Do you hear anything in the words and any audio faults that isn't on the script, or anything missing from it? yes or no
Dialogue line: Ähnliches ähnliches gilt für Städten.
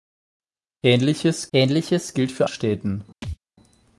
yes